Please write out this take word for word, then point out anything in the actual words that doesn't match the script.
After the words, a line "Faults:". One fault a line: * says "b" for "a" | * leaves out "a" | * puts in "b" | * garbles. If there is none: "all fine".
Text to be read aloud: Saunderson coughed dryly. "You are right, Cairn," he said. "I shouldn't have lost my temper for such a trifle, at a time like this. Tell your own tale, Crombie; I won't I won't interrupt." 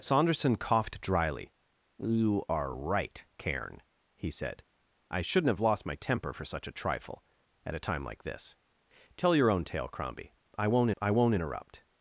Saunderson coughed dryly. "You are right, Cairn," he said. "I shouldn't have lost my temper for such a trifle, at a time like this. Tell your own tale, Crombie; I won't I won't interrupt."
Faults:
all fine